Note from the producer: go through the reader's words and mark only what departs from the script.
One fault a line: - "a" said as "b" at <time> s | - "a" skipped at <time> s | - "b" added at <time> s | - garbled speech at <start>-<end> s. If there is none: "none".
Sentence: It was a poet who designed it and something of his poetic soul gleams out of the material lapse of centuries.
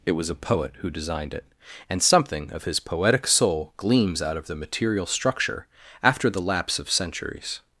- "structure after the" added at 5.0 s